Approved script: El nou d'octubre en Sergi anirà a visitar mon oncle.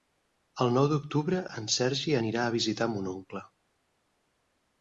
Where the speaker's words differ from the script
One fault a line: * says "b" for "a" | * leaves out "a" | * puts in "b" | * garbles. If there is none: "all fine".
all fine